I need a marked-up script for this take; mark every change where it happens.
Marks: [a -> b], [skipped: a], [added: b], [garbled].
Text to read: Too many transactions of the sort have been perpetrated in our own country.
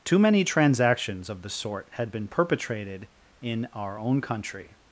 Too many transactions of the sort [have -> had] been perpetrated in our own country.